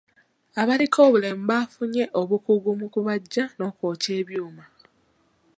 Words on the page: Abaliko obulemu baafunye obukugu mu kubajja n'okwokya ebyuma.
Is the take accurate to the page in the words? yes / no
yes